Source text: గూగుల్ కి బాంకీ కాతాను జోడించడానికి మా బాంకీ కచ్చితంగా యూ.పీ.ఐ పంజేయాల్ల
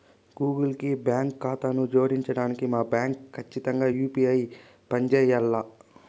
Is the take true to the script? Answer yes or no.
yes